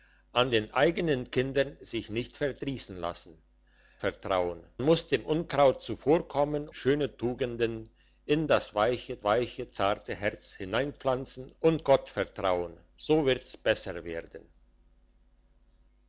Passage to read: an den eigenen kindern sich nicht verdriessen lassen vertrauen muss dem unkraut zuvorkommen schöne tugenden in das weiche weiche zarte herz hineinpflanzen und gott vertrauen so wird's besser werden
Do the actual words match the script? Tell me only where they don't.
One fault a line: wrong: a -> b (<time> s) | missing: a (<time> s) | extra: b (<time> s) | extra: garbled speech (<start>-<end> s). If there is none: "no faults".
no faults